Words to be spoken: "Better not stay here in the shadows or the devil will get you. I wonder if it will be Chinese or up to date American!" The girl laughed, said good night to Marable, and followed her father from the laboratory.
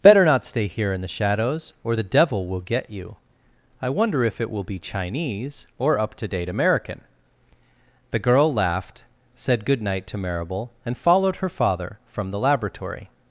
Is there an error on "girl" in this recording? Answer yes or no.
no